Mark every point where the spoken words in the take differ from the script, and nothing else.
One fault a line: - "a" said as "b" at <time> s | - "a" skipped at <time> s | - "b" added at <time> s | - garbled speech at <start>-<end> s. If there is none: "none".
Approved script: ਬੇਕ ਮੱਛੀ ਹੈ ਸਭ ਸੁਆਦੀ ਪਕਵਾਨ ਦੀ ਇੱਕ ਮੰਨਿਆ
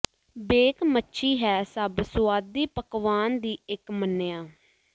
none